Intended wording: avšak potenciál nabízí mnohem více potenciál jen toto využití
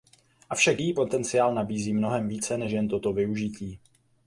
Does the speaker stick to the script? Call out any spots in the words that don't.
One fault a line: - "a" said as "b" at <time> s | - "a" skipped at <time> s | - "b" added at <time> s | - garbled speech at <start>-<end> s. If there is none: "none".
- "její" added at 0.8 s
- "potenciál" said as "než" at 2.6 s